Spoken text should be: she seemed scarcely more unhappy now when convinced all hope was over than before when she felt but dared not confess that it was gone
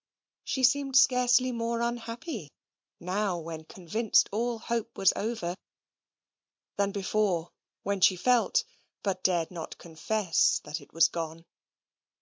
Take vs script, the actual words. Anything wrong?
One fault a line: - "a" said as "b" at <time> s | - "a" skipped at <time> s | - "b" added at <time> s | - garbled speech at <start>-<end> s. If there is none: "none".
none